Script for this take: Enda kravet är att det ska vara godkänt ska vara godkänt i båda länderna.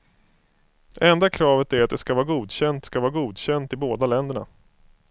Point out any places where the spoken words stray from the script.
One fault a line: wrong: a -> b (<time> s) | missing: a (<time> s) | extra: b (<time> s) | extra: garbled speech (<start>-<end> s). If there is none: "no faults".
no faults